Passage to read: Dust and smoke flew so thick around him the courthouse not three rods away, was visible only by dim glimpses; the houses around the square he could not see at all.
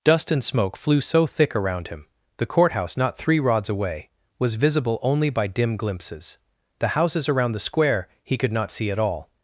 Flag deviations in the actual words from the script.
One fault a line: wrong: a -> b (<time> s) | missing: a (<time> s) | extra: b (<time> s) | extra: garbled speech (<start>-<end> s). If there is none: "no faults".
no faults